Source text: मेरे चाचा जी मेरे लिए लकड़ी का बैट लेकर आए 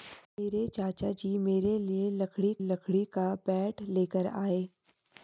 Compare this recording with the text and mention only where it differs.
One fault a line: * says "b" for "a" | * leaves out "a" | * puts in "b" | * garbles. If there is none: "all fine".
* puts in "लकड़ी"